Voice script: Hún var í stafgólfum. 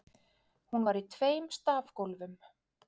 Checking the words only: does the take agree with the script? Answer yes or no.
no